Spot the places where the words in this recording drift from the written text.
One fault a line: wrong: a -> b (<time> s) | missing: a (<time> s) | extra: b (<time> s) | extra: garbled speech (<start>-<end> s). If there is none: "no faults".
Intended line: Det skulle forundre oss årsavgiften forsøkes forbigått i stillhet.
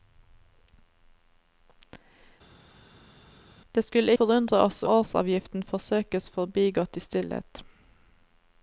no faults